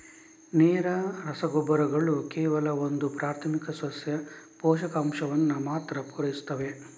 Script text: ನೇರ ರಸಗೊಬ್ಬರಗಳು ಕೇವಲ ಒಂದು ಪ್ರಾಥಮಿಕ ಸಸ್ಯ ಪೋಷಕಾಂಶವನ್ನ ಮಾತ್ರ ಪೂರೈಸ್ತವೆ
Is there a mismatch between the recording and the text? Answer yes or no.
no